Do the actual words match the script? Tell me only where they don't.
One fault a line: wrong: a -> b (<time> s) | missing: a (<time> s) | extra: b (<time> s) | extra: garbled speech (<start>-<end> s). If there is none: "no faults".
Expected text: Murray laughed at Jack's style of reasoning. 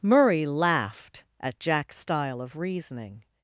no faults